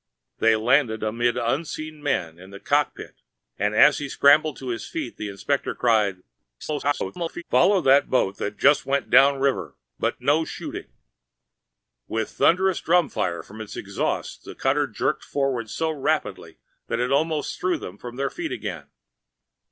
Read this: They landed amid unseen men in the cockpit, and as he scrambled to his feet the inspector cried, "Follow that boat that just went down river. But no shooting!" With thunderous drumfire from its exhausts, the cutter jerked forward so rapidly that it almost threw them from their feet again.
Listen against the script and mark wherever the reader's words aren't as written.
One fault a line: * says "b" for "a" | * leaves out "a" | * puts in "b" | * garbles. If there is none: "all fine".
* garbles